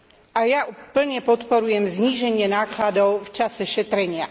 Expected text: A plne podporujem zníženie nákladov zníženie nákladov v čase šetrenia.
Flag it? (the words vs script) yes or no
yes